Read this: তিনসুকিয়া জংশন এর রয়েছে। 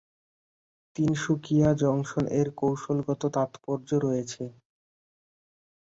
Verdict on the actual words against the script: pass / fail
fail